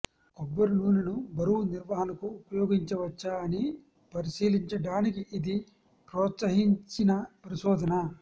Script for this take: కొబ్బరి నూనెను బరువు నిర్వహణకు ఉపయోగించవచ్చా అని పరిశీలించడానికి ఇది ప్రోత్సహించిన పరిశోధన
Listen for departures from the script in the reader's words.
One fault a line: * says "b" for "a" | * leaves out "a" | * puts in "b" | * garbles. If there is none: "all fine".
all fine